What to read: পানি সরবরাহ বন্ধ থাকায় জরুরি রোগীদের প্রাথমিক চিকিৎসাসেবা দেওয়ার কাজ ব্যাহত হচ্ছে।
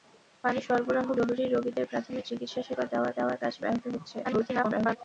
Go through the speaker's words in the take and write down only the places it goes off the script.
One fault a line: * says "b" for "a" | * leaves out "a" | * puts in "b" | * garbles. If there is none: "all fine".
* leaves out "বন্ধ থাকায়"
* puts in "দেওয়ার"
* garbles